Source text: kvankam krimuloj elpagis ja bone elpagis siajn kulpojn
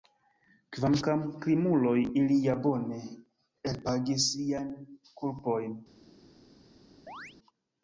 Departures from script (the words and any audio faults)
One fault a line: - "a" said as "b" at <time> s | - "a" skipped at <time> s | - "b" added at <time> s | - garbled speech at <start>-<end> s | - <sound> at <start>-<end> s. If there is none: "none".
- "elpagis" said as "ili" at 2.2 s
- chirp at 7.1-7.4 s